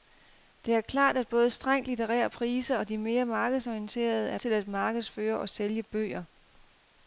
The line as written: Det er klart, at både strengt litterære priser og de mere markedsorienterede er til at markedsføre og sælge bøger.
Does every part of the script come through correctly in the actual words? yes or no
yes